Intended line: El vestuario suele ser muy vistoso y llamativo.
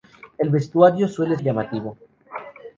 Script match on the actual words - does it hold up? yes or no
no